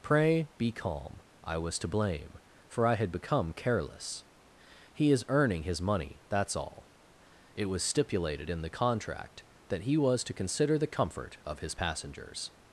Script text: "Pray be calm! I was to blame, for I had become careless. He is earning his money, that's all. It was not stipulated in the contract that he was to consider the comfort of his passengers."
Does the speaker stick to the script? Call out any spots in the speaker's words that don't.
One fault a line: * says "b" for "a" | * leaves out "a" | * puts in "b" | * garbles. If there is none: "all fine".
* leaves out "not"